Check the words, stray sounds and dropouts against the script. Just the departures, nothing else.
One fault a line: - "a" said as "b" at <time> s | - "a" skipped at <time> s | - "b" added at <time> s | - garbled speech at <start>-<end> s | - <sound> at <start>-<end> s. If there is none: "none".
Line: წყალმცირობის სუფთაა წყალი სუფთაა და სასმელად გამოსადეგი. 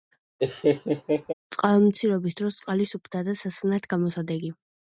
- laugh at 0.4-1.3 s
- "სუფთაა" said as "დროს" at 2.4 s